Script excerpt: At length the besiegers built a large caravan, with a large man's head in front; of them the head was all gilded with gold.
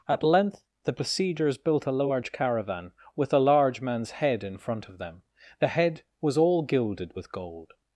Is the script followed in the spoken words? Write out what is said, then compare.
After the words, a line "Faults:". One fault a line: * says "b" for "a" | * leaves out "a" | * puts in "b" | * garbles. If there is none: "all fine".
At length the besiegers built a large caravan, with a large man's head in front; of them the head was all gilded with gold.
Faults:
all fine